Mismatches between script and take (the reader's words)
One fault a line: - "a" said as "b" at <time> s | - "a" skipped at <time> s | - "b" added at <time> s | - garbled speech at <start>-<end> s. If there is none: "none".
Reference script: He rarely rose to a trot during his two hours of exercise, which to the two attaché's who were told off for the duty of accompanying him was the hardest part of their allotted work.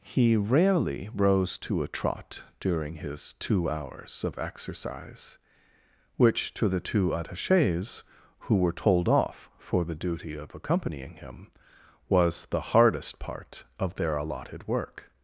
none